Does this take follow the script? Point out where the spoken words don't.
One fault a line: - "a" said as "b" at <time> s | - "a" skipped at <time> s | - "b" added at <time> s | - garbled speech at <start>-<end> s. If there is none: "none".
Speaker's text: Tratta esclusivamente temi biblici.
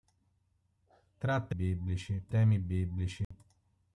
- "esclusivamente" said as "biblici" at 1.5 s